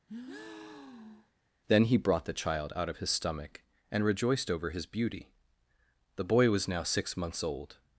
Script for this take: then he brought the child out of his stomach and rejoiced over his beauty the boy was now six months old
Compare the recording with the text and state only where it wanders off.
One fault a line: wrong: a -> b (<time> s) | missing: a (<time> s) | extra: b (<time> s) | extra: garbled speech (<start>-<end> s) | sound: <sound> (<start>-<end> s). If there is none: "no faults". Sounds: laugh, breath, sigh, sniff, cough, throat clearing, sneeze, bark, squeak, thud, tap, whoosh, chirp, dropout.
sound: breath (0.1-1.3 s)